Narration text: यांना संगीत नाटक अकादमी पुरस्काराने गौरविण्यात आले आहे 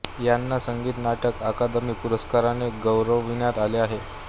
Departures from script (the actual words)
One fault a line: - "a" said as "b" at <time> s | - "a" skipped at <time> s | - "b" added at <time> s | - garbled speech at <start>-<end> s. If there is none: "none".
none